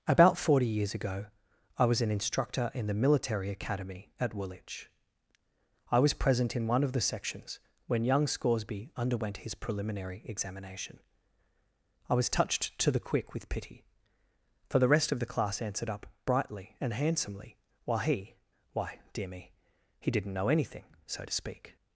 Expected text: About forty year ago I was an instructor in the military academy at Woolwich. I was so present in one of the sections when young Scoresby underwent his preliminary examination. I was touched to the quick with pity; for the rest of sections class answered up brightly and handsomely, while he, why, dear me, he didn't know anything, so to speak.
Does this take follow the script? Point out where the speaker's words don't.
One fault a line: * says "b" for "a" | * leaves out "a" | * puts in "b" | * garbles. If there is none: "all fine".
* says "years" for "year"
* leaves out "so"
* says "the" for "sections"